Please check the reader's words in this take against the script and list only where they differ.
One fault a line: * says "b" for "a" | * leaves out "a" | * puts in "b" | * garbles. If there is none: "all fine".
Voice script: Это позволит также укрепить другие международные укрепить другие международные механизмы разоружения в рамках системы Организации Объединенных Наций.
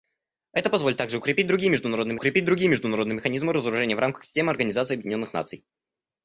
all fine